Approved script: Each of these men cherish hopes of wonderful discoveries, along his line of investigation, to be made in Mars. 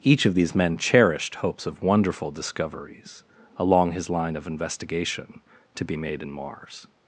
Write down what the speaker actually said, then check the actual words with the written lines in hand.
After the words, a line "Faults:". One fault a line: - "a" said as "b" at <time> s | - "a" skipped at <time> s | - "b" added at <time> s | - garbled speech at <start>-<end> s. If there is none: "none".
Each of these men cherished hopes of wonderful discoveries, along his line of investigation, to be made in Mars.
Faults:
- "cherish" said as "cherished" at 0.8 s